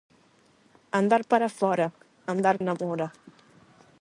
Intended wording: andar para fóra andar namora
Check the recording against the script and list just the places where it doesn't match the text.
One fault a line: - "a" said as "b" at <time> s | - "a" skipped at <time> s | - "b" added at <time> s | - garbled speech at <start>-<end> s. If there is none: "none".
none